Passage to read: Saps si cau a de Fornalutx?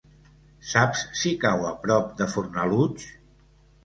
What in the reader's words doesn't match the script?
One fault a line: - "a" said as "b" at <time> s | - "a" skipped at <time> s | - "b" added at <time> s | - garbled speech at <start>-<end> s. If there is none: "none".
- "prop" added at 1.8 s